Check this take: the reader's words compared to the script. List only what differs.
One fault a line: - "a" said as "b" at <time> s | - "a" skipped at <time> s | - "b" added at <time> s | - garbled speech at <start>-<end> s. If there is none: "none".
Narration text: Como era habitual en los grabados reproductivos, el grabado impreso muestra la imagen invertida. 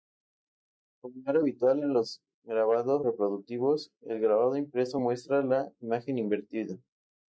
none